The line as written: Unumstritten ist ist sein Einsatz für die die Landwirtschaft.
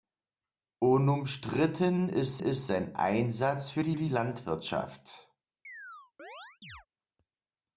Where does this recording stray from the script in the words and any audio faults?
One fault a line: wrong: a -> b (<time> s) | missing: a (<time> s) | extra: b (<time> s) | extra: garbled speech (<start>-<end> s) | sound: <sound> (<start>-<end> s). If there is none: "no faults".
sound: chirp (5.6-6.9 s)